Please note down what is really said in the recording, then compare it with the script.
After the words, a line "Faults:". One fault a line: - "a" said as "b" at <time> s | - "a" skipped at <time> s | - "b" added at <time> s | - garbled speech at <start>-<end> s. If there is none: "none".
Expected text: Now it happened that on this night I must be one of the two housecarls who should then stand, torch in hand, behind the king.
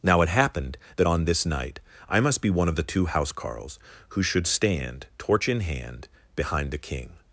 Now it happened that on this night I must be one of the two housecarls who should stand, torch in hand, behind the king.
Faults:
- "then" skipped at 4.5 s